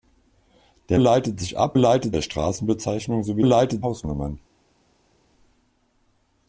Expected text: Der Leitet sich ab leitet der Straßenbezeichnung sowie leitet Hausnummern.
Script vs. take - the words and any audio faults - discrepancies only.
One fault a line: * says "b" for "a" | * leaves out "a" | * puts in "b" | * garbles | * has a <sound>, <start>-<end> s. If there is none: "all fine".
all fine